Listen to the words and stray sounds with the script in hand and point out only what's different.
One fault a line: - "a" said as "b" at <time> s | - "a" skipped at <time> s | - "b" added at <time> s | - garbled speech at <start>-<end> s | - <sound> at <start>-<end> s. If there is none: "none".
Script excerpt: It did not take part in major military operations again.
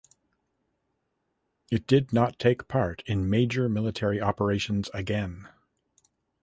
none